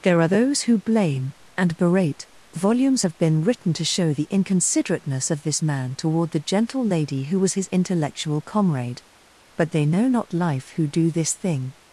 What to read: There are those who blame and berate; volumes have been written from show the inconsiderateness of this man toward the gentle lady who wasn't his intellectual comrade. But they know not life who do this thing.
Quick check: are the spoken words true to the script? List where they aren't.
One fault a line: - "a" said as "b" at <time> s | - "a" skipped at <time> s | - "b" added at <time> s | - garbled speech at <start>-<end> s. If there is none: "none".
- "from" said as "to" at 3.7 s
- "wasn't" said as "was" at 7.4 s